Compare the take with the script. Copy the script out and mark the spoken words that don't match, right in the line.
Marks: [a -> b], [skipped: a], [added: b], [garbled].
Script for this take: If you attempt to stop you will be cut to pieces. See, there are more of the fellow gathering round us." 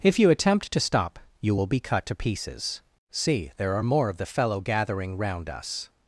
If you attempt to stop you will be cut to pieces. See, there are more of the fellow gathering round us."